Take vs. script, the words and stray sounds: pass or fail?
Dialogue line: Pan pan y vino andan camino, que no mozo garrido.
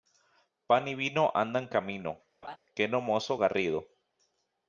fail